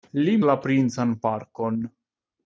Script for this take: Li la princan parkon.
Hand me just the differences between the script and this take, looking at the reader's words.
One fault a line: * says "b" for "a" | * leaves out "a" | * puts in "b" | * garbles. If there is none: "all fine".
all fine